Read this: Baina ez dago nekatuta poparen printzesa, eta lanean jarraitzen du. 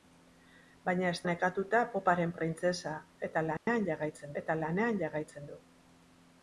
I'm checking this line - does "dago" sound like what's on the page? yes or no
no